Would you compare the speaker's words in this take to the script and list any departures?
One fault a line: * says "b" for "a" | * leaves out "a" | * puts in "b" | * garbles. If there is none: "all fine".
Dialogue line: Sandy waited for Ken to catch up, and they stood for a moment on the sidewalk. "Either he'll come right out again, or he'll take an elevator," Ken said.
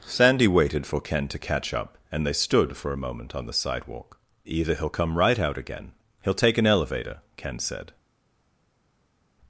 * leaves out "or"